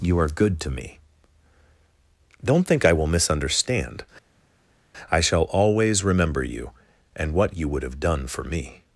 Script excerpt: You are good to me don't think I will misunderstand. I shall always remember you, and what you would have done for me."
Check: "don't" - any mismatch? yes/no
no